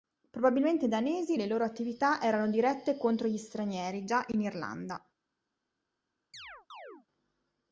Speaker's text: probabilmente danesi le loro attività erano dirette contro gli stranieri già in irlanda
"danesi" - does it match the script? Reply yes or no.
yes